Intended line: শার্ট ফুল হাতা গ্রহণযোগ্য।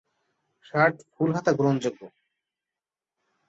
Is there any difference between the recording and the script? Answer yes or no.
no